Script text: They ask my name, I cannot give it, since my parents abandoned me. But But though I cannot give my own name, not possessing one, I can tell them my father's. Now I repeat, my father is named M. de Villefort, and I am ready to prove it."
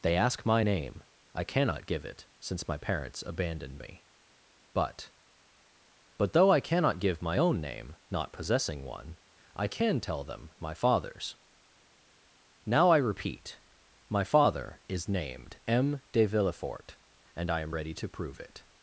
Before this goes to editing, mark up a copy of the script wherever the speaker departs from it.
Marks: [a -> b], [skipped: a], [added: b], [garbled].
They ask my name, I cannot give it, since my parents abandoned me. But But though I cannot give my own name, not possessing one, I can tell them my father's. Now I repeat, my father is named M. de Villefort, and I am ready to prove it."